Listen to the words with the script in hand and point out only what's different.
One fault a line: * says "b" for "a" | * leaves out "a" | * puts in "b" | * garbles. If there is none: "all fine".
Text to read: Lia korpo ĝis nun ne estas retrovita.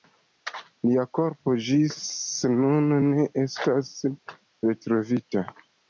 all fine